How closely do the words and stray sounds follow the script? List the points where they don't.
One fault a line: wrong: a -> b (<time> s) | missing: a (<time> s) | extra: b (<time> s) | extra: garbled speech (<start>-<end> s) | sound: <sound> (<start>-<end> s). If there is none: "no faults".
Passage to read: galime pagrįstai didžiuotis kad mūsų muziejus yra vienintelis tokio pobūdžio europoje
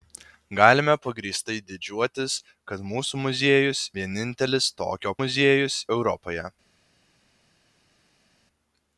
missing: yra (3.9 s)
wrong: pobūdžio -> muziejus (5.2 s)